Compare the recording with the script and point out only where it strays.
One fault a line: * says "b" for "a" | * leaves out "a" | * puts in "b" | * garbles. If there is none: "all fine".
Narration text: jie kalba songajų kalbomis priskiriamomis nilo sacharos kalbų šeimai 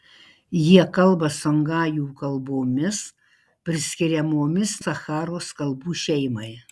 * leaves out "nilo"